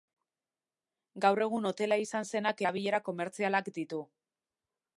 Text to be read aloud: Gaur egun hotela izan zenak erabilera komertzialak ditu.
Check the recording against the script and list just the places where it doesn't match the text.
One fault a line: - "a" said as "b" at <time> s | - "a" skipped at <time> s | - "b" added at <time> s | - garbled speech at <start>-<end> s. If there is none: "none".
none